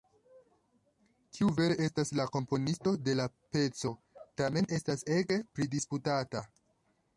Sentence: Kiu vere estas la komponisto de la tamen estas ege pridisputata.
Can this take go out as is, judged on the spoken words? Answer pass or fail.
fail